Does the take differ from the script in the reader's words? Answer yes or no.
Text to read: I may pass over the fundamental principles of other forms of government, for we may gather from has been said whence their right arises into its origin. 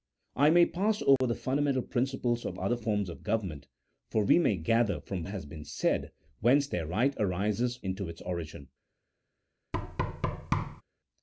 no